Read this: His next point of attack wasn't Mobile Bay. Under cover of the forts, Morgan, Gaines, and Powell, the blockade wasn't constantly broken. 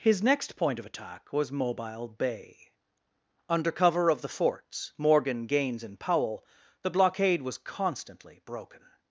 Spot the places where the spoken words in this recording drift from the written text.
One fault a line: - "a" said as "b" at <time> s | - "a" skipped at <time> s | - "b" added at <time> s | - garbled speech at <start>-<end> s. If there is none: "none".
- "wasn't" said as "was" at 1.3 s
- "wasn't" said as "was" at 7.4 s